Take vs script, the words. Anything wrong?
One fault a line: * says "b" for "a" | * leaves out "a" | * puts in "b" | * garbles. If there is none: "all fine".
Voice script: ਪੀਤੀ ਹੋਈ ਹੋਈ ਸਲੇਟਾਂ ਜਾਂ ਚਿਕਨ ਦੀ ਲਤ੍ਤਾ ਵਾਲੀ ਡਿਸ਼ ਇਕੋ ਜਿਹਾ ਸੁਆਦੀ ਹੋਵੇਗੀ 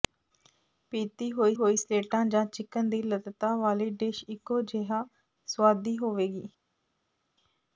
all fine